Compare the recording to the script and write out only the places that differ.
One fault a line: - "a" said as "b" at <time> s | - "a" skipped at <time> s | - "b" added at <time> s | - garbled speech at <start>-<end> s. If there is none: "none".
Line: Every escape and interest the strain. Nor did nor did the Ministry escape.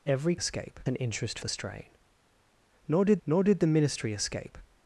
none